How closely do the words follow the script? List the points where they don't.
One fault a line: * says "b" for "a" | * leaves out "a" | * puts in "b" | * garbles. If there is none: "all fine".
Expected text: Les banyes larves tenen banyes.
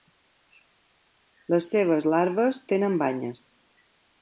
* says "seves" for "banyes"